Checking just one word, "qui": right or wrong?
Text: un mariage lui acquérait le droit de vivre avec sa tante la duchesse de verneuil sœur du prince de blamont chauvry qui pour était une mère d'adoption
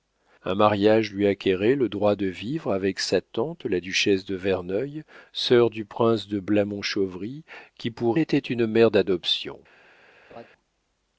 right